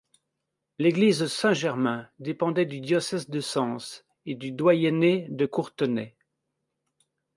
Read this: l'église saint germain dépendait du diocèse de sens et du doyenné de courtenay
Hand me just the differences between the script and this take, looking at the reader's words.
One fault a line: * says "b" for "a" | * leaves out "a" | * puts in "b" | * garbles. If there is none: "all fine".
all fine